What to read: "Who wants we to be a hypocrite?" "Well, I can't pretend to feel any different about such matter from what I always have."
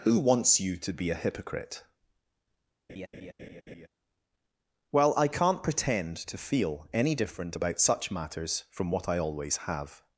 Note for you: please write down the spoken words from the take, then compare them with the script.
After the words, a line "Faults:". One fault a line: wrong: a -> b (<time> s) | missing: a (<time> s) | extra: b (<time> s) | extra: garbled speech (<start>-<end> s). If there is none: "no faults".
"Who wants you to be a hypocrite?" "Well, I can't pretend to feel any different about such matters from what I always have."
Faults:
wrong: we -> you (0.6 s)
wrong: matter -> matters (8.1 s)